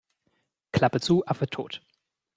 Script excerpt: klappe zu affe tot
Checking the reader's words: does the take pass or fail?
pass